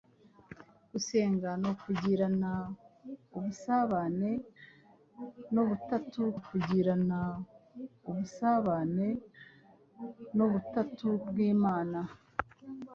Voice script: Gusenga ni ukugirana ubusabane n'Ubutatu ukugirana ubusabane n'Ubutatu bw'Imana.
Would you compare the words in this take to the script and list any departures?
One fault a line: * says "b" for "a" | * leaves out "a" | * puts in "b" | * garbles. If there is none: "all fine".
all fine